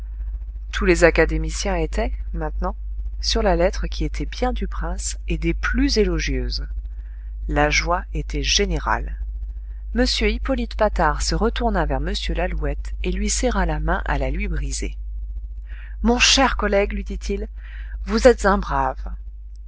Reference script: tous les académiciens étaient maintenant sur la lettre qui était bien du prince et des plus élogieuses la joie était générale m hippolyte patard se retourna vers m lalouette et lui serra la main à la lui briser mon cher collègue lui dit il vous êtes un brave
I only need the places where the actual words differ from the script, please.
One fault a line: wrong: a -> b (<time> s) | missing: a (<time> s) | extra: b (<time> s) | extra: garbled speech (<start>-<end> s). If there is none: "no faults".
no faults